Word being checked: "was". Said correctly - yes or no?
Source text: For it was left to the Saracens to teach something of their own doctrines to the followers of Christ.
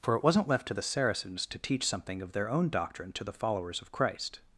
no